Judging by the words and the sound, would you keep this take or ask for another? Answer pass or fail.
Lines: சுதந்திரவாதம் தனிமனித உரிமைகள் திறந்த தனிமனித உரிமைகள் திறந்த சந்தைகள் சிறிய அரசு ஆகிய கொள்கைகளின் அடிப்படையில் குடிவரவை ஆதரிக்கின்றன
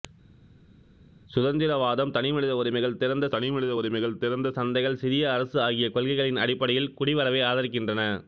pass